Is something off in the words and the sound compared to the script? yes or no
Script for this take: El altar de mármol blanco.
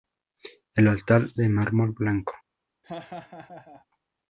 yes